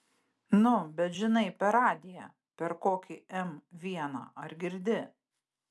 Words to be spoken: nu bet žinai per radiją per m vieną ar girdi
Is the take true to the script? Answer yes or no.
no